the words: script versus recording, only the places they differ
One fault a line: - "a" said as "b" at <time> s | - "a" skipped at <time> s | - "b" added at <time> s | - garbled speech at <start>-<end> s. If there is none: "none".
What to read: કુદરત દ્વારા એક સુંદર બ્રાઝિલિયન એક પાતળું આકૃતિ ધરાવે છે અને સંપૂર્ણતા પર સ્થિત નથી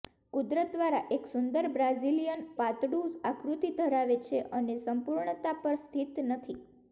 - "એક" skipped at 2.4 s